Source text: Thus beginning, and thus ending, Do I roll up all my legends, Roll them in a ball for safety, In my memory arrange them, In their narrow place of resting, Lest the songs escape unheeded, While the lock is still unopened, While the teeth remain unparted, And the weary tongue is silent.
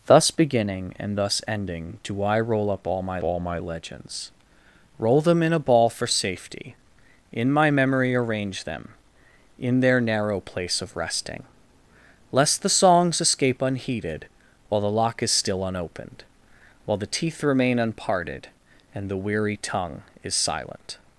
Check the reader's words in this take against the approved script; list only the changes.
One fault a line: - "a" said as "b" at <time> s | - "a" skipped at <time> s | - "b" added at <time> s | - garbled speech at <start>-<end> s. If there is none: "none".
- "all my" added at 3.2 s